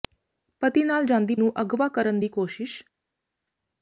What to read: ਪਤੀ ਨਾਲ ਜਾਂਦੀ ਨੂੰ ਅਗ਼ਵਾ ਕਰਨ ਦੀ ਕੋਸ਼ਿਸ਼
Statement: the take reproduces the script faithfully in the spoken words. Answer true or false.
true